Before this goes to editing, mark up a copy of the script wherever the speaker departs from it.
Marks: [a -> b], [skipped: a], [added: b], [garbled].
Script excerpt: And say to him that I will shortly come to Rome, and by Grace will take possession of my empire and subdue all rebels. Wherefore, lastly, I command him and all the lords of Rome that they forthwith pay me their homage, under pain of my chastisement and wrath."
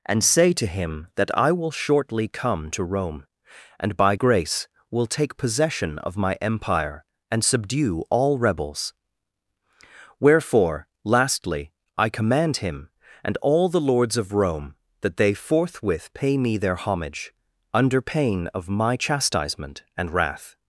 And say to him that I will shortly come to Rome, and by Grace will take possession of my empire and subdue all rebels. Wherefore, lastly, I command him and all the lords of Rome that they forthwith pay me their homage, under pain of my chastisement and wrath."